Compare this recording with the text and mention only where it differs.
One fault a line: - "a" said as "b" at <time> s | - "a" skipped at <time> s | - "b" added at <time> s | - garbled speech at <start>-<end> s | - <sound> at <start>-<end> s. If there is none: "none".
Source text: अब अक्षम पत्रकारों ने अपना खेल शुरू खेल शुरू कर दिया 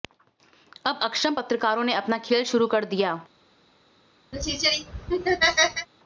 - "खेल शुरू" skipped at 2.7 s
- laugh at 4.3-5.9 s